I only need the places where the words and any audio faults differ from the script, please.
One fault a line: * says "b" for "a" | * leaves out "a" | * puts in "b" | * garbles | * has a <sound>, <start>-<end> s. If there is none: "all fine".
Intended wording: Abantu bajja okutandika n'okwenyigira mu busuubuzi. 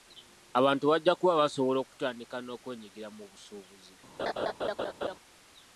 * puts in "kuba basobola"
* has a laugh, 4.2-5.2 s